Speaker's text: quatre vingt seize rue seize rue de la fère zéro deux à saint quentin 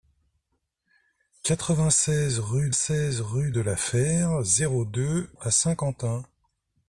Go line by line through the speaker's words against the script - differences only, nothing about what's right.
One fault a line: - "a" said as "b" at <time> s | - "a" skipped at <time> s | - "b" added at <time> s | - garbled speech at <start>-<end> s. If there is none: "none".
none